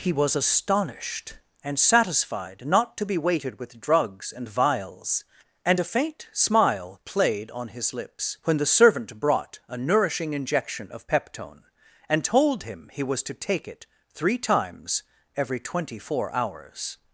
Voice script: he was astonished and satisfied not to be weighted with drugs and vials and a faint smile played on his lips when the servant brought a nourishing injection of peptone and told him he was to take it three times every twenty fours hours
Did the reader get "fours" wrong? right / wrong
wrong